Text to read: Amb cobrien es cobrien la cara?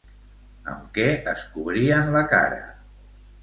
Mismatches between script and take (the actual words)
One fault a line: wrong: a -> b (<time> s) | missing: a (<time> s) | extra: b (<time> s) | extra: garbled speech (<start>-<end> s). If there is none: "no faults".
wrong: cobrien -> què (0.9 s)